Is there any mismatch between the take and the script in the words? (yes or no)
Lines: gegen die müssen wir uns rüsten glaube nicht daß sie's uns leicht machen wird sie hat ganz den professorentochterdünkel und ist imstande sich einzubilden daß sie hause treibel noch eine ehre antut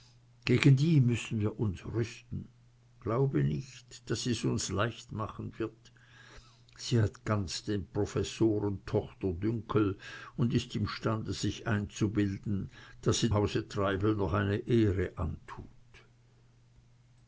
no